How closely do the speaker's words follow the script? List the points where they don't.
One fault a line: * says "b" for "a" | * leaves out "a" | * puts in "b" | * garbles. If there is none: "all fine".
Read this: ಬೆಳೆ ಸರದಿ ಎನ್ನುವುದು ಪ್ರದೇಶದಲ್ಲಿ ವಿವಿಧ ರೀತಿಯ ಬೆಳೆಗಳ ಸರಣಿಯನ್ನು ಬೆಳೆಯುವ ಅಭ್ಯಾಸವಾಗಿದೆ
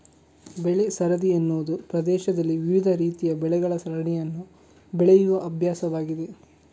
all fine